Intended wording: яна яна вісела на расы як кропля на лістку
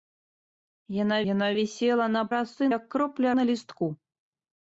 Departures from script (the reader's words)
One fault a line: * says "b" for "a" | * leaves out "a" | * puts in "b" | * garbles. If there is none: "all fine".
all fine